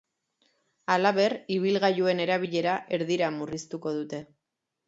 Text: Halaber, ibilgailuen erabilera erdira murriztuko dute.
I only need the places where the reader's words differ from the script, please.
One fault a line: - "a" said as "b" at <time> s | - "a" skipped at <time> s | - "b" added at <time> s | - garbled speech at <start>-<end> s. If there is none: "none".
none